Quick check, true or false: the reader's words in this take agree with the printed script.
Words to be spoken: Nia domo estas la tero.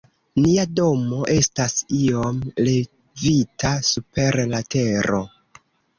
false